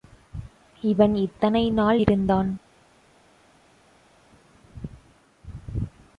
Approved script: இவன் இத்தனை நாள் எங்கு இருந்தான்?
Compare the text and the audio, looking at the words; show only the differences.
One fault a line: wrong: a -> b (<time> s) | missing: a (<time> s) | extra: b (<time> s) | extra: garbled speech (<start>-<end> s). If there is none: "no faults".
missing: எங்கு (2.0 s)